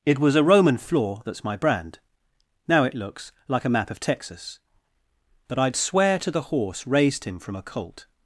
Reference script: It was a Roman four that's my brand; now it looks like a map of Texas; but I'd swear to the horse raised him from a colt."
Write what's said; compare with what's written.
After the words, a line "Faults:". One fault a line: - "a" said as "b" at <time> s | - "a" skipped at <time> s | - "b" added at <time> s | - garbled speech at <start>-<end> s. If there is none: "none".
It was a Roman floor that's my brand; now it looks like a map of Texas; but I'd swear to the horse raised him from a colt."
Faults:
- "four" said as "floor" at 0.8 s